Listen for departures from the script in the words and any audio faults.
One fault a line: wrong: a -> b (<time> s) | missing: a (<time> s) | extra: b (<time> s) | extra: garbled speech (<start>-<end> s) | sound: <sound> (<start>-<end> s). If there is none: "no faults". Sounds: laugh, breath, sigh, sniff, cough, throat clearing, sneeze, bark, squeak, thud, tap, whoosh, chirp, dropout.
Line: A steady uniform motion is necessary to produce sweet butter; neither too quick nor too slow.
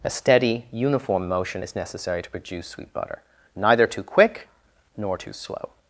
no faults